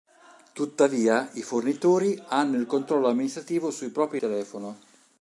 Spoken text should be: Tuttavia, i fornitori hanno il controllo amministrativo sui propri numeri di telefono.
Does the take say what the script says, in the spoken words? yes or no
no